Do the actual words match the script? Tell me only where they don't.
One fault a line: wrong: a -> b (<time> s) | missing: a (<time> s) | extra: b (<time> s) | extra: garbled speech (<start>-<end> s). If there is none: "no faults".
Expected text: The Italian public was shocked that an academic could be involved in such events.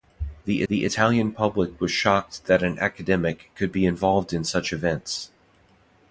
extra: the (0.7 s)